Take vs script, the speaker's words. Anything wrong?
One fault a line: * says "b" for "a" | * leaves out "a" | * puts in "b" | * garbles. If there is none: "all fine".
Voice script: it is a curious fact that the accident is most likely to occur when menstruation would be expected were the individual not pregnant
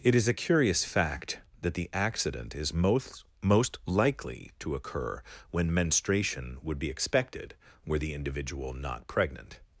* puts in "most"